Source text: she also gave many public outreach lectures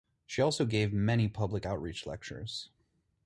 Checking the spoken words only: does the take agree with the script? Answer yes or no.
yes